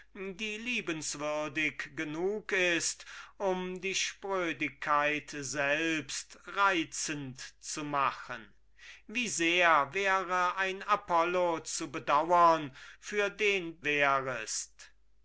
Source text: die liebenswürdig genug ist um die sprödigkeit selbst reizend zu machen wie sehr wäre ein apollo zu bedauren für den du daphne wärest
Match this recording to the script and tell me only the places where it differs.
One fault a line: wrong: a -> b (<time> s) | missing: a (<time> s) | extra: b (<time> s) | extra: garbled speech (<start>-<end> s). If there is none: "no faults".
missing: du daphne (13.8 s)